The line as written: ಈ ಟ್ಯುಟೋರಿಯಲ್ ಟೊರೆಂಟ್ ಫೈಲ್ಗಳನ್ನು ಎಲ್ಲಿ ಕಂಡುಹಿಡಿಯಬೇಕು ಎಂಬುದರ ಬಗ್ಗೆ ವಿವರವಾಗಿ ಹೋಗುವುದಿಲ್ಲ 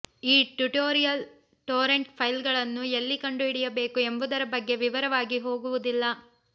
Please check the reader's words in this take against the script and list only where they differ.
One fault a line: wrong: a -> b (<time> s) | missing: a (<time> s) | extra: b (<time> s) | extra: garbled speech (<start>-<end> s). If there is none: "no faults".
no faults